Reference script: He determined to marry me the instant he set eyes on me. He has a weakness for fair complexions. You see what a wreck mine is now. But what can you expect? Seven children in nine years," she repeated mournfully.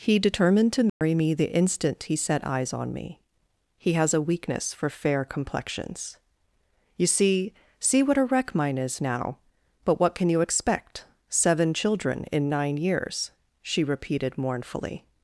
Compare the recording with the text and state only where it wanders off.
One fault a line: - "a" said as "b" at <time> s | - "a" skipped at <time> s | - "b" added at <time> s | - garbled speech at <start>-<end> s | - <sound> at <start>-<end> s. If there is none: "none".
- dropout at 0.9-1.0 s
- "see" added at 7.8 s